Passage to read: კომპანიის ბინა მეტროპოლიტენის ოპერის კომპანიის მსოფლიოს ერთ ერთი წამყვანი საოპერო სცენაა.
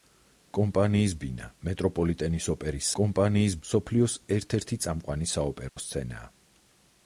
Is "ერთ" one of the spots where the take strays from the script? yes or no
no